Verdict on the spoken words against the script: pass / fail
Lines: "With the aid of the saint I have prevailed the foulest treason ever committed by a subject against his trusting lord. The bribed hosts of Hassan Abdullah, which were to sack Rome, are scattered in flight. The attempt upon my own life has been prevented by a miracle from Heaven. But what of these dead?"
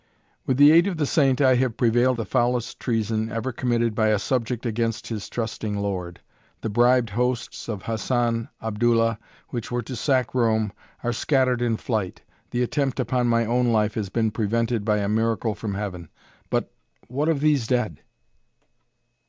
pass